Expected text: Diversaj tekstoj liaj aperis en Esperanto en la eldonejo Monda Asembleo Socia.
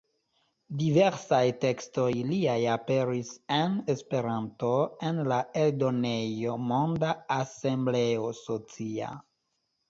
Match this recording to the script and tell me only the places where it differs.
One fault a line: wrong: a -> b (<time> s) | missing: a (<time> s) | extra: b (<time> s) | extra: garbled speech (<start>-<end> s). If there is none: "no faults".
no faults